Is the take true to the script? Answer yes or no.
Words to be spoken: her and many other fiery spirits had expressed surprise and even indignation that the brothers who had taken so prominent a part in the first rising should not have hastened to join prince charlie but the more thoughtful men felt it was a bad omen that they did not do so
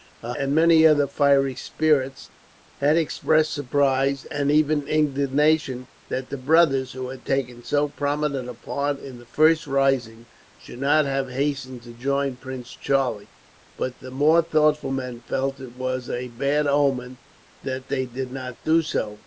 yes